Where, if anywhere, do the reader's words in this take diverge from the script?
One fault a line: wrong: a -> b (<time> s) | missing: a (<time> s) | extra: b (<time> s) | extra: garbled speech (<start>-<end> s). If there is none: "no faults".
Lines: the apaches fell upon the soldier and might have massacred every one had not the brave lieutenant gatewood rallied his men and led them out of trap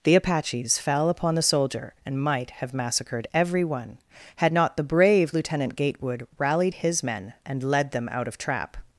no faults